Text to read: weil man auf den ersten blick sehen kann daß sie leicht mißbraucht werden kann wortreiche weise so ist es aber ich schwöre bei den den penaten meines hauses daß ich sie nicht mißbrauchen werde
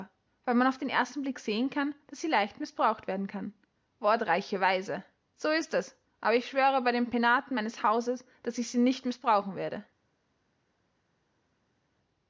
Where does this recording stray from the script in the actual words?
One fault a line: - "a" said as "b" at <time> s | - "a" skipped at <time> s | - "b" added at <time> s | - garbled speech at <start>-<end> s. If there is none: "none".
- "den" skipped at 7.1 s